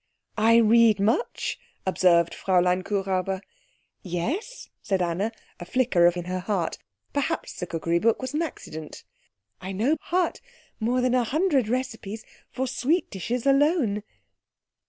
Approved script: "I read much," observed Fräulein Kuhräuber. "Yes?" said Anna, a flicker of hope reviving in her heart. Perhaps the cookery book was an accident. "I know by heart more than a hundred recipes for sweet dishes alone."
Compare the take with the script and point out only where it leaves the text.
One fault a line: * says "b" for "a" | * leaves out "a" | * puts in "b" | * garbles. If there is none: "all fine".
* leaves out "hope reviving"
* leaves out "by"